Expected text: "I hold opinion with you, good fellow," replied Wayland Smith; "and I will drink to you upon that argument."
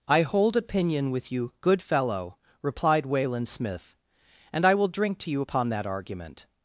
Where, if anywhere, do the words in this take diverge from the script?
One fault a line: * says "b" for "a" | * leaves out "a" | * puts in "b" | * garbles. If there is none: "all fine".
all fine